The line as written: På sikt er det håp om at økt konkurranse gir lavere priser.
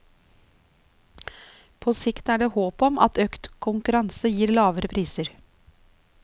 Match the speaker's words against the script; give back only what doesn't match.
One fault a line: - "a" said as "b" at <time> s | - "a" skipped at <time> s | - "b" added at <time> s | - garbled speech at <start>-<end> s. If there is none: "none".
none